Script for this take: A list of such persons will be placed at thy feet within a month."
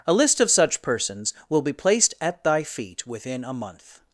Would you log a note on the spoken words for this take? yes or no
no